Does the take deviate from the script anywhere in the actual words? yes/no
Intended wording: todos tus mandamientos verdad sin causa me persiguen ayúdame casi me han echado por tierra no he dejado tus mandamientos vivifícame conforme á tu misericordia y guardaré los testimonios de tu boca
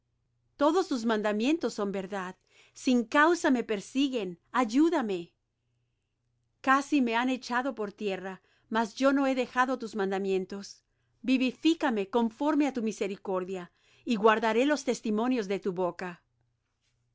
yes